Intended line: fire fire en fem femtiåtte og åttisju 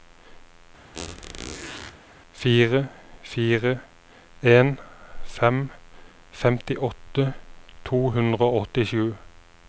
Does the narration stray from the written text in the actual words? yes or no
yes